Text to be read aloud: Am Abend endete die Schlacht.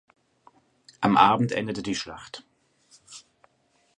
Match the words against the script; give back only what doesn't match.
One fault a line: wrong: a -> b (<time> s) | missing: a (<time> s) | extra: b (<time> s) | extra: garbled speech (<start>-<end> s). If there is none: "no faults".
no faults